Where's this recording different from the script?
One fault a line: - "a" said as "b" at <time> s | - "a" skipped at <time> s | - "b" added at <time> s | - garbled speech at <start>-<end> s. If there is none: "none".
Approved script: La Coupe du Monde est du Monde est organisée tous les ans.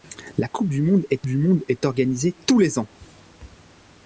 none